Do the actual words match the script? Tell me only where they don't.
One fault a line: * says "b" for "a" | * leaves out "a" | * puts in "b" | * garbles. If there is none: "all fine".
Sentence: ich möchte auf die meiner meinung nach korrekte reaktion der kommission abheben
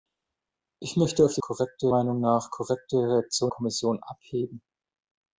* says "korrekte" for "meiner"
* leaves out "der"